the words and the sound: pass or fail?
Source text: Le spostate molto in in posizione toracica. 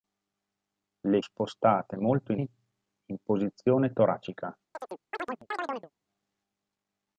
fail